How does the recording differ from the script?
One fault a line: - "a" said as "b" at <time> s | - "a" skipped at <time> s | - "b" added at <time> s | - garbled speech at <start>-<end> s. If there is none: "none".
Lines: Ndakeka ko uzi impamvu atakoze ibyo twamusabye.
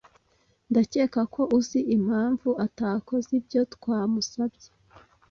none